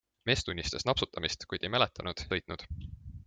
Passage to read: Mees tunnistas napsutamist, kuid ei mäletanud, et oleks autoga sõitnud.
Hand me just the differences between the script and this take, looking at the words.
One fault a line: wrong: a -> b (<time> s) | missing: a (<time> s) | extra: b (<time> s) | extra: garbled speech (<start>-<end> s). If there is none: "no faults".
missing: et oleks autoga (2.2 s)